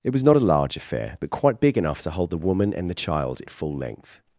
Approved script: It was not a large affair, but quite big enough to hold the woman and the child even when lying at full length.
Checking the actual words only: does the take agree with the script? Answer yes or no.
no